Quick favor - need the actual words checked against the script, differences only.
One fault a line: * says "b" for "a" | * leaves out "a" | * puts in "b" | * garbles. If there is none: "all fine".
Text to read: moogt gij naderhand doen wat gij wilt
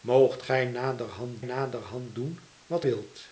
* puts in "naderhand"
* leaves out "gij"